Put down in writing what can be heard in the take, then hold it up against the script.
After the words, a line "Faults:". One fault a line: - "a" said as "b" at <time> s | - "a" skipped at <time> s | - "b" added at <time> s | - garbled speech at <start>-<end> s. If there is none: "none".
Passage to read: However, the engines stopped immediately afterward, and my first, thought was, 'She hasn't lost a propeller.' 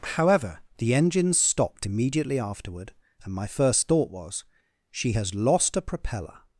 However, the engines stopped immediately afterward, and my first, thought was, 'She has lost a propeller.'
Faults:
- "hasn't" said as "has" at 5.1 s